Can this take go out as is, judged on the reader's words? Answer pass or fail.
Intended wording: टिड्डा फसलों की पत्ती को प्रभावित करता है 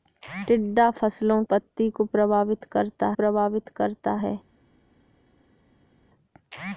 fail